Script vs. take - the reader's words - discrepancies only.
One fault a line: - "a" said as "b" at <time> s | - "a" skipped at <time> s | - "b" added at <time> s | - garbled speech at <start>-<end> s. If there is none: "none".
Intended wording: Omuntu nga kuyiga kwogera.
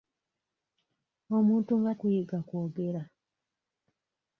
none